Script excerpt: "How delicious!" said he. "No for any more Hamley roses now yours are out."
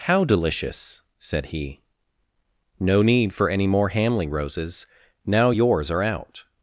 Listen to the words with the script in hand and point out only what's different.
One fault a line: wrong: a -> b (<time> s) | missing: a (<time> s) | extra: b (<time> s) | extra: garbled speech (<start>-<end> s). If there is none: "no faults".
extra: need (3.0 s)